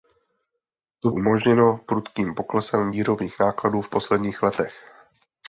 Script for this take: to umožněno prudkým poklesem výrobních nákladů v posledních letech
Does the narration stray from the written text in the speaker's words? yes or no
no